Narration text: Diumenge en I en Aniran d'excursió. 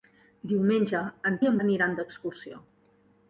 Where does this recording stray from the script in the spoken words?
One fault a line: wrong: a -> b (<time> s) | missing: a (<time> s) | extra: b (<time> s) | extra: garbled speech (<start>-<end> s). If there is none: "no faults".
no faults